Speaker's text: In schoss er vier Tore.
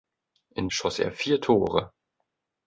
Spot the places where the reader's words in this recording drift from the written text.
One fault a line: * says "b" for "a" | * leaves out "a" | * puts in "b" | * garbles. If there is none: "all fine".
all fine